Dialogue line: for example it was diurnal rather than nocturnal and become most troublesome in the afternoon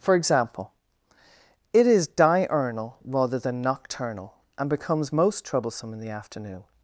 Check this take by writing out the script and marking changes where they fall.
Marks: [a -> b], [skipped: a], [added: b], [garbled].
for example it [was -> is] diurnal rather than nocturnal and [become -> becomes] most troublesome in the afternoon